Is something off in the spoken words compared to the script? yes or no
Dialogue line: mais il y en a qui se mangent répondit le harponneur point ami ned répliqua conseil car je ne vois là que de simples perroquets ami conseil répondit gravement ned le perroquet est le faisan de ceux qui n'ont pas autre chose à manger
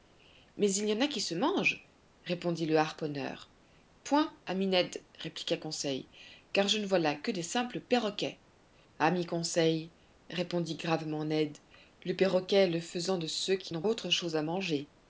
yes